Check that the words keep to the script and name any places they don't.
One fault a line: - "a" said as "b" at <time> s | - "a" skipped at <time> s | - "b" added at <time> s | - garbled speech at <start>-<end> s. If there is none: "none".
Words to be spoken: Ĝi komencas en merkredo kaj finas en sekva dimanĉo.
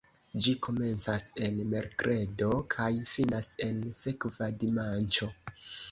none